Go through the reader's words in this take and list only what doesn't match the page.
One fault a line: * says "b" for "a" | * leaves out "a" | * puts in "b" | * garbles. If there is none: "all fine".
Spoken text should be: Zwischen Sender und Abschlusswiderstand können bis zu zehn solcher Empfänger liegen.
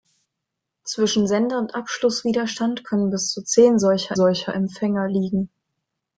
* puts in "solcher"